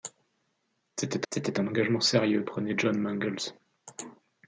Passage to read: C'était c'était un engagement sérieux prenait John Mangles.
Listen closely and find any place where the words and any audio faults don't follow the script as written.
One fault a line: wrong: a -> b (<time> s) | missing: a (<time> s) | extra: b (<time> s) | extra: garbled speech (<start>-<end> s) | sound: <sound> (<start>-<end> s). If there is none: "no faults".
no faults